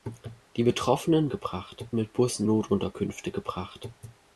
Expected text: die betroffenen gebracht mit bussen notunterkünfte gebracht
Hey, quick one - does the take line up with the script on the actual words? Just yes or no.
yes